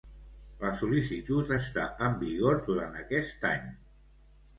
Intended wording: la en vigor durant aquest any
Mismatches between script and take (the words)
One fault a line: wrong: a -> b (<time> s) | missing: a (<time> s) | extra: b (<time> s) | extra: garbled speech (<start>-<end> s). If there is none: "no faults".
extra: sol·licitud està (0.8 s)